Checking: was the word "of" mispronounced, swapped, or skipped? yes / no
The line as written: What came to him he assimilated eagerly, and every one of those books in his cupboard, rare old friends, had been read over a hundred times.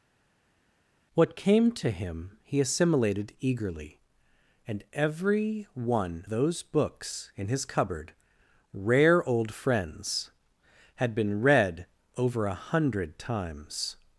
yes